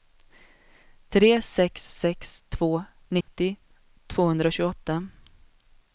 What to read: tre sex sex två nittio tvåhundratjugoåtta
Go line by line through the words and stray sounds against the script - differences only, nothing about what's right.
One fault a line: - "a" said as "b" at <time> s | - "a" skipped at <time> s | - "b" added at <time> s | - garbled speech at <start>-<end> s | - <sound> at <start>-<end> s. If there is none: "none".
- dropout at 3.2-3.3 s